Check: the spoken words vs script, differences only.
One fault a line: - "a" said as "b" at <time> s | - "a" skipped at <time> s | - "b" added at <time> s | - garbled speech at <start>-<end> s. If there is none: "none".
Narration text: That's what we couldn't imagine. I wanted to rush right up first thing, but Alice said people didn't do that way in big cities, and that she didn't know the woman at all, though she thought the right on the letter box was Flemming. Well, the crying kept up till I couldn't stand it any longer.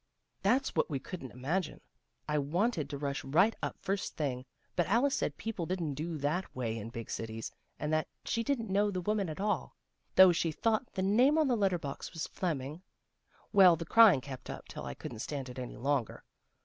- "right" said as "name" at 11.0 s